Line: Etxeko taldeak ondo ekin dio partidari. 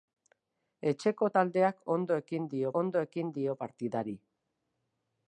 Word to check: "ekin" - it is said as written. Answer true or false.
true